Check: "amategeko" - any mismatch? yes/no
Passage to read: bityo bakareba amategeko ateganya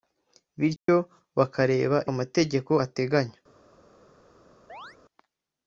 no